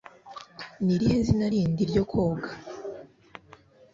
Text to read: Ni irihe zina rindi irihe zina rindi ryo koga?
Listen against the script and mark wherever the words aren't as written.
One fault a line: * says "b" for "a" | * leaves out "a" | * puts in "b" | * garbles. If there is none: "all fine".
* leaves out "irihe zina rindi"